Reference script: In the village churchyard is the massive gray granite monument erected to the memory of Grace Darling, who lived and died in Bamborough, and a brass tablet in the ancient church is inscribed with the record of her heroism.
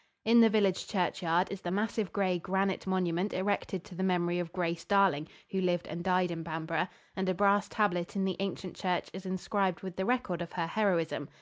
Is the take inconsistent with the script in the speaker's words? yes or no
no